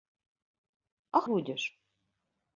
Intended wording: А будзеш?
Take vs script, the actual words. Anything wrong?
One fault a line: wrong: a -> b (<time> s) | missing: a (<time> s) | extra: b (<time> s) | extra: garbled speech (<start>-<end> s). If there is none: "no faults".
no faults